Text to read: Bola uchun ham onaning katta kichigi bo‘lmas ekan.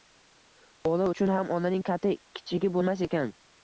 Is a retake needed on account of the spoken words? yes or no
no